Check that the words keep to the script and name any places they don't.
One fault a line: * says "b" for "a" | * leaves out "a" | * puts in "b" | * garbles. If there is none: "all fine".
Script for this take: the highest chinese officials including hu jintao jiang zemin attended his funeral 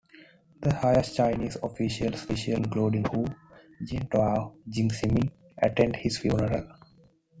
all fine